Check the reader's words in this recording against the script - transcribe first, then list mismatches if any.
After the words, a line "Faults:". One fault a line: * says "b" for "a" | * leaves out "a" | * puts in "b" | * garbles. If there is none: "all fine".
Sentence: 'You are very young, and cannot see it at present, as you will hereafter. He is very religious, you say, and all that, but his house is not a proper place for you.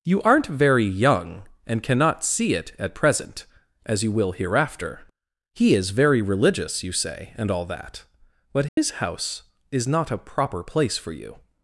'You aren't very young, and cannot see it at present, as you will hereafter. He is very religious, you say, and all that, but his house is not a proper place for you.
Faults:
* says "aren't" for "are"